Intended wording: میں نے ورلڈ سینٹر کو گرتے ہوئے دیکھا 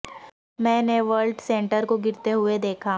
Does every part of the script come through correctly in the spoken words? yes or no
yes